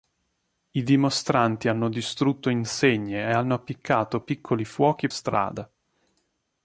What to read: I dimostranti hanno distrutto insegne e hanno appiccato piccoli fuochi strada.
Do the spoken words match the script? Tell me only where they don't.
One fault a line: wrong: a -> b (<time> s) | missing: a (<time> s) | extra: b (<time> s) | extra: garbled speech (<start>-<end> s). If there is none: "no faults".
no faults